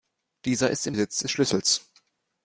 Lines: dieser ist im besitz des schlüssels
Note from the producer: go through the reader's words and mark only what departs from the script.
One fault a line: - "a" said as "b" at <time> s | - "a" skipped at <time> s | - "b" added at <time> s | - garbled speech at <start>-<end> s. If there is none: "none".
none